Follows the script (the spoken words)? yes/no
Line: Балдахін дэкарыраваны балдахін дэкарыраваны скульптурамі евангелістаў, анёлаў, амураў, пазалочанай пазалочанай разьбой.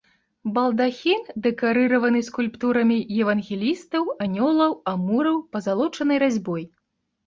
no